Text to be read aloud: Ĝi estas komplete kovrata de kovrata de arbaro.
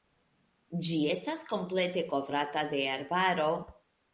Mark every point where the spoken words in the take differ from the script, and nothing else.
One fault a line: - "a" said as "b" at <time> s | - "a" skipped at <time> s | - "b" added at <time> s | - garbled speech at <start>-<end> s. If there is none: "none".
- "kovrata de" skipped at 2.9 s